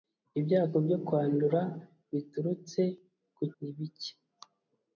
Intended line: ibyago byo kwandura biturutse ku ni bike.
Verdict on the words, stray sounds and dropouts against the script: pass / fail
pass